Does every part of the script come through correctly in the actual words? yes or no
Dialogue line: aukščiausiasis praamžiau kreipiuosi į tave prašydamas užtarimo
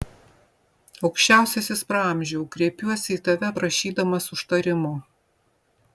yes